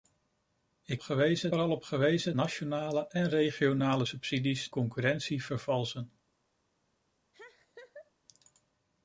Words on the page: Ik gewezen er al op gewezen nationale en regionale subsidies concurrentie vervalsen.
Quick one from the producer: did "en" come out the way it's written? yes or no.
yes